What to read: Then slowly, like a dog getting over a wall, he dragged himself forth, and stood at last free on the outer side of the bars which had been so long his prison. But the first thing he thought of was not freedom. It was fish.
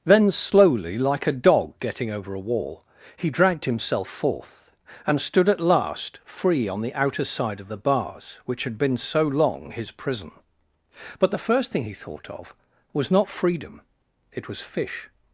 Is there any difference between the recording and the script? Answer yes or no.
no